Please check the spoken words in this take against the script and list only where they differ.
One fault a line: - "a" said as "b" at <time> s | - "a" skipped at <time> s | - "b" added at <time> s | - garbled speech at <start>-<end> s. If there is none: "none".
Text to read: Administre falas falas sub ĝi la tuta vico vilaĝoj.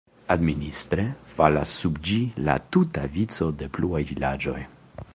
- "falas" skipped at 1.8 s
- "de pluaj" added at 3.6 s